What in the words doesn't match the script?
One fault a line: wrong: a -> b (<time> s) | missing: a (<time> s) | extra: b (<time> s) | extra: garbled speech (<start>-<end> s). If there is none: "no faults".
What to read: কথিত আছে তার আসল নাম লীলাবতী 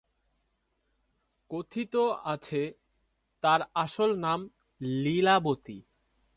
no faults